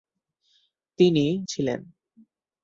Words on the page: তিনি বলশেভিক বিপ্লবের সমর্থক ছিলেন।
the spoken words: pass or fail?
fail